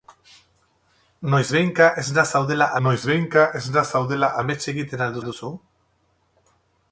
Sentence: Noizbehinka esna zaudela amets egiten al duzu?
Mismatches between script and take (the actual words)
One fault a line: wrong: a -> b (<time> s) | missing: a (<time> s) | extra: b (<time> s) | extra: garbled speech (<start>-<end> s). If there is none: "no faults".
extra: noizbehinka esna zaudela (2.9 s)
extra: al (5.2 s)